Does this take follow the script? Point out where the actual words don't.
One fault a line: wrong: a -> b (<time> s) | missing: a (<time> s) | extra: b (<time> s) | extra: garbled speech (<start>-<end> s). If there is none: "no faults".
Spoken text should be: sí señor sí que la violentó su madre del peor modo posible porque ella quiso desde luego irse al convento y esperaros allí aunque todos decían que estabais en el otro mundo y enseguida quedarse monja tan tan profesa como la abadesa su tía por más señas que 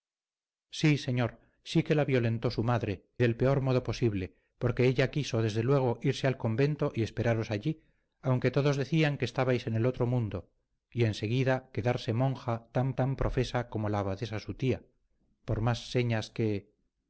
no faults